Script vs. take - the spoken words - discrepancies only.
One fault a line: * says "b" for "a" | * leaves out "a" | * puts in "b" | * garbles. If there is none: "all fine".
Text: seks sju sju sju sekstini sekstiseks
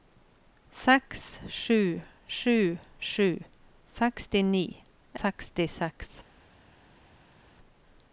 all fine